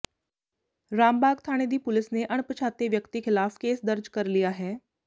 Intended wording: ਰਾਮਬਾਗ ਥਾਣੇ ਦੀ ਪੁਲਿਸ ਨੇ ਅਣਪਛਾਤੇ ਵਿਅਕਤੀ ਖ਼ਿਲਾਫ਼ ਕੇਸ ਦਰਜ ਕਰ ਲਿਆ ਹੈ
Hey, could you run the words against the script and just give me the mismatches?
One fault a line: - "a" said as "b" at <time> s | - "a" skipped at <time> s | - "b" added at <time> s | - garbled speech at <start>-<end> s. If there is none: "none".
none